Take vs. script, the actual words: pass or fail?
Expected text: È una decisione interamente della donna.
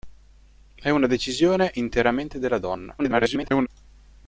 fail